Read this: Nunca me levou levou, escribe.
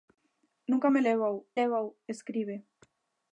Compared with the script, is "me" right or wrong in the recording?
right